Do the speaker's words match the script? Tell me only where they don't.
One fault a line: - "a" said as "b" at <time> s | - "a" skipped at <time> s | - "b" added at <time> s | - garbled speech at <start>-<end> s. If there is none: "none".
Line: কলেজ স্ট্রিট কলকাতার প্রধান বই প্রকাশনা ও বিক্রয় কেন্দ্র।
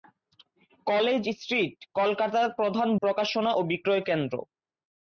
- "বই" skipped at 2.9 s